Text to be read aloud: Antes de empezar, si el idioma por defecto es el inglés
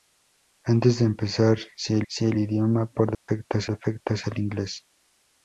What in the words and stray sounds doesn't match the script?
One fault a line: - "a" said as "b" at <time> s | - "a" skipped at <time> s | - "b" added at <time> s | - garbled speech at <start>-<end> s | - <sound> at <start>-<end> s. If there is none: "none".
- "si el" added at 2.1 s
- dropout at 3.1-3.3 s
- "defecto es" added at 3.7 s